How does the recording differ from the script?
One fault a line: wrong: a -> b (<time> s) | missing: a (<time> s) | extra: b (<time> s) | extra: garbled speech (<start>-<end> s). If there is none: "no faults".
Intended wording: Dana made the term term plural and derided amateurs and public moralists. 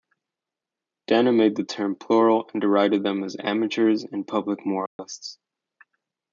missing: term (1.9 s)
extra: them as (3.0 s)